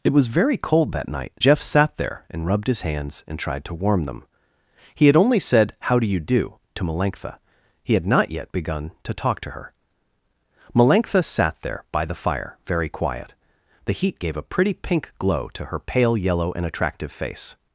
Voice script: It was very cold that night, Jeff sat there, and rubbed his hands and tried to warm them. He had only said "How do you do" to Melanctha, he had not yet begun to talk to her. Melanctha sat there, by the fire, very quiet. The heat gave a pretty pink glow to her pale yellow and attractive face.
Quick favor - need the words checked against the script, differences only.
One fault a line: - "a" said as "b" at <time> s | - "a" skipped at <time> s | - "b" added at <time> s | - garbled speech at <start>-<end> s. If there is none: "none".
none